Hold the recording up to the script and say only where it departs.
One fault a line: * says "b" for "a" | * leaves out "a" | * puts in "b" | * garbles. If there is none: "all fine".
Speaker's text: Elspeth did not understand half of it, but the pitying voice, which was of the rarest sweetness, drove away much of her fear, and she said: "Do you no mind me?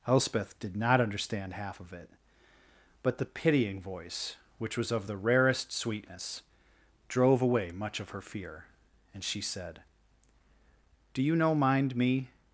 all fine